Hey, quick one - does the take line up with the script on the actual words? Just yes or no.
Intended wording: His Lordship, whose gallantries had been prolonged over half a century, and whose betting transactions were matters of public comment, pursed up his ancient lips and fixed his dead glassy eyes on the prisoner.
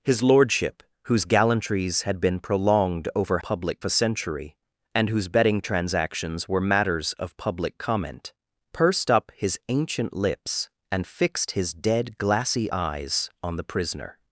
no